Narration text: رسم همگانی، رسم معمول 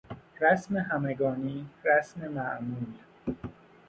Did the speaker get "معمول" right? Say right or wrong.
right